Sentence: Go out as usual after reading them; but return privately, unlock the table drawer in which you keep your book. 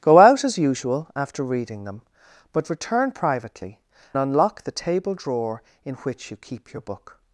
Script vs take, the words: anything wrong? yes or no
no